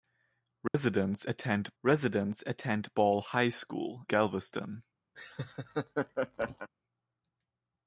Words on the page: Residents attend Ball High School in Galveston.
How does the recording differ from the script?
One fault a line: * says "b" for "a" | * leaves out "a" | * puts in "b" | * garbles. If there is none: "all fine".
* puts in "residents attend"
* leaves out "in"